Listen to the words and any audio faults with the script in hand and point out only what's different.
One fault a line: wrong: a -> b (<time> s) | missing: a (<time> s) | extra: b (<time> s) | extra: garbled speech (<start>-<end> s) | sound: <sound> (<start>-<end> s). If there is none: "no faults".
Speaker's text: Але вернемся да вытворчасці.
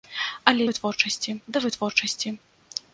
wrong: вернемся -> вытворчасці (0.7 s)